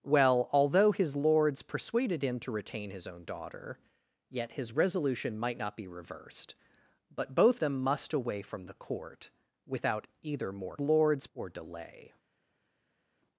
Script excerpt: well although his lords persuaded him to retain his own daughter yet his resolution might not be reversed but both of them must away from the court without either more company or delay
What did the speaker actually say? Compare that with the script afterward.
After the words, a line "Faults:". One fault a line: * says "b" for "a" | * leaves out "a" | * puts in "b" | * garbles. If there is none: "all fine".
well although his lords persuaded him to retain his own daughter yet his resolution might not be reversed but both them must away from the court without either more lords or delay
Faults:
* leaves out "of"
* says "lords" for "company"